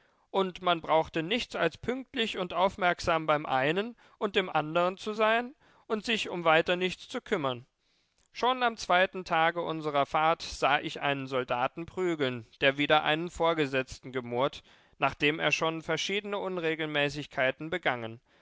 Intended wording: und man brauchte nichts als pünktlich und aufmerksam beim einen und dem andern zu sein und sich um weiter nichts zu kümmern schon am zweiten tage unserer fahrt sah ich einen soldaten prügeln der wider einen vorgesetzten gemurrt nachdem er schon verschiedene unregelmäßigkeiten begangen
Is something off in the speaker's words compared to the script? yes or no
no